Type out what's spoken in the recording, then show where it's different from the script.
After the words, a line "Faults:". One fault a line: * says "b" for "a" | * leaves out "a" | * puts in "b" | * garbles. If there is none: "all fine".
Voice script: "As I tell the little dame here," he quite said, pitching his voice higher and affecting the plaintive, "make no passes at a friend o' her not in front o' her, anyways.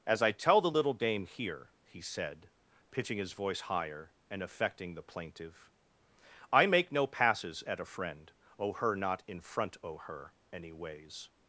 "As I tell the little dame here," he said, pitching his voice higher and affecting the plaintive, "I make no passes at a friend o' her not in front o' her, anyways.
Faults:
* leaves out "quite"
* puts in "I"